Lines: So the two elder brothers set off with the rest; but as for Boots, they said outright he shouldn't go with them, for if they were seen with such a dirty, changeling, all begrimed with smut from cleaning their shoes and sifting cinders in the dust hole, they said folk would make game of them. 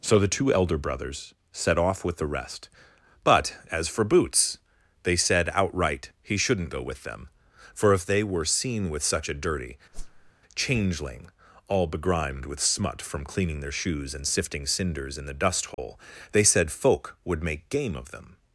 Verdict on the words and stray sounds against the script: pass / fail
fail